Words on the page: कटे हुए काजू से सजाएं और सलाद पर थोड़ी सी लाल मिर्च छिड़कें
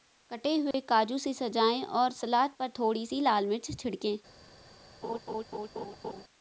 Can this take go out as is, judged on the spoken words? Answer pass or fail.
pass